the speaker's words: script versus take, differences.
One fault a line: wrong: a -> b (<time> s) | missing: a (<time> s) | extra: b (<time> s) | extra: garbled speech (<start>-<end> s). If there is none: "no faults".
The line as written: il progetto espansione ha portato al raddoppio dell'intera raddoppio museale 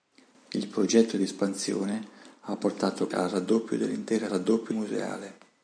no faults